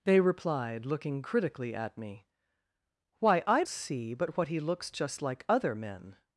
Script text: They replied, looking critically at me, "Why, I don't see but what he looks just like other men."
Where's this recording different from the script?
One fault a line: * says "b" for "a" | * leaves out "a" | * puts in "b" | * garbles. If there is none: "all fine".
* leaves out "don't"